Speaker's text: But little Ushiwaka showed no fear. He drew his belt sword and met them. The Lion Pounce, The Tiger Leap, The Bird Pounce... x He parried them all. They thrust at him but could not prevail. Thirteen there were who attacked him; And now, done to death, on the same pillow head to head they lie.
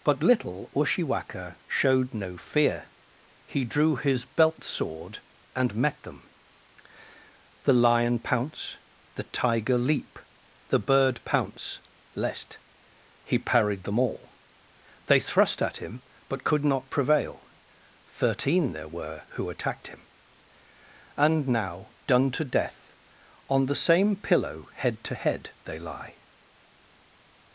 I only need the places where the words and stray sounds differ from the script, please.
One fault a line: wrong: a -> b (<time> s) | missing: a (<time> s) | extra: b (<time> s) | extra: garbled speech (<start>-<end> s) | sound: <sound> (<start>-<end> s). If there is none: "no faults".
wrong: x -> lest (12.2 s)